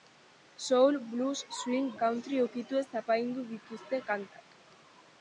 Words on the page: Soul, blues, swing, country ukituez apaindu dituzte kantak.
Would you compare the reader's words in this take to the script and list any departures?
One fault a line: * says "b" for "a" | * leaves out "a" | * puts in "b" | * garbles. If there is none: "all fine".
all fine